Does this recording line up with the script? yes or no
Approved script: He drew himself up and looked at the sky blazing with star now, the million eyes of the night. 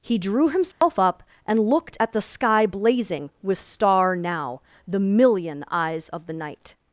yes